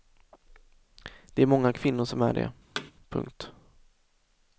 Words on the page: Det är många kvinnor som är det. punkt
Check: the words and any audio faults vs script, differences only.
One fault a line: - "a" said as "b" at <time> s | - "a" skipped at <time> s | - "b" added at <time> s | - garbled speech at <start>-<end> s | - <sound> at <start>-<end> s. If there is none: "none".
- thud at 2.8-2.9 s